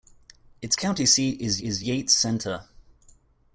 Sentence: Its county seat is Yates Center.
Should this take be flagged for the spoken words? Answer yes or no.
yes